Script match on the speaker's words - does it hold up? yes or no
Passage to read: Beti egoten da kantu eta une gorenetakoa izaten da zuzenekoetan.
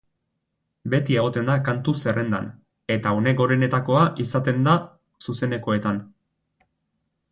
no